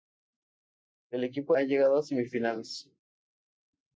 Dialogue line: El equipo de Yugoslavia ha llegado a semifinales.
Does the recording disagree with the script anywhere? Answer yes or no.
yes